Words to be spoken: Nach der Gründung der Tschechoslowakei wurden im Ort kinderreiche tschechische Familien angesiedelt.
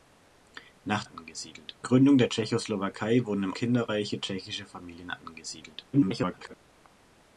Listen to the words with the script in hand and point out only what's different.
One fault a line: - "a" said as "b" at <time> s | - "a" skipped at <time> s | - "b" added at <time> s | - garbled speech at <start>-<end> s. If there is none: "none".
- "der" said as "angesiedelt" at 1.0 s
- "Ort" skipped at 3.5 s
- garbled speech at 5.9-6.5 s